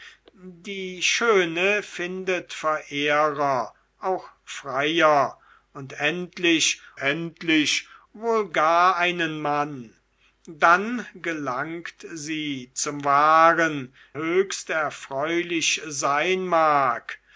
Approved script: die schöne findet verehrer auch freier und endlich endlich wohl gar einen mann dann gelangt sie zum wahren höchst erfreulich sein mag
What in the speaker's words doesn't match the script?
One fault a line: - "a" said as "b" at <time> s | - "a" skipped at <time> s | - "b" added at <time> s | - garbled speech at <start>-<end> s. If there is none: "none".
none